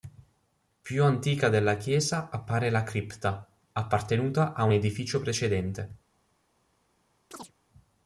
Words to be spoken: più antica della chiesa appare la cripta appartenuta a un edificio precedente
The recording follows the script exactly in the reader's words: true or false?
true